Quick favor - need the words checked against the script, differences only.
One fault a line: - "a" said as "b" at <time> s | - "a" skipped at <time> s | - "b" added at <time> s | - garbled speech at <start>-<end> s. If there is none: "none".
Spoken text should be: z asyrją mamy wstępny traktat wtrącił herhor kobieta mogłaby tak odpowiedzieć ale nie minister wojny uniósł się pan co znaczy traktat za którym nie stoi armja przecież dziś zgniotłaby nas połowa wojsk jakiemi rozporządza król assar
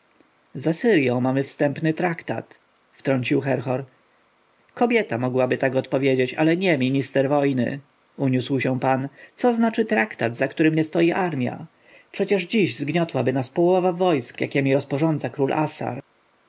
none